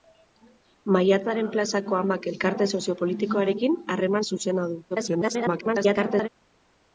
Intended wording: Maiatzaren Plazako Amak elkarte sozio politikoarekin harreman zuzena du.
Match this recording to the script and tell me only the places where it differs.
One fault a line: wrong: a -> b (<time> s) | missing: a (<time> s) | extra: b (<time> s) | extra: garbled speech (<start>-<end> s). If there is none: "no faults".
extra: garbled speech (4.9-6.3 s)